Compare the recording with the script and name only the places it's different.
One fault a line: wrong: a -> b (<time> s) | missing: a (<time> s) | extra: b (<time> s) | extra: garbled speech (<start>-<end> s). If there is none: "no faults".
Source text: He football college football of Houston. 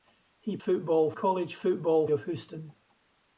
no faults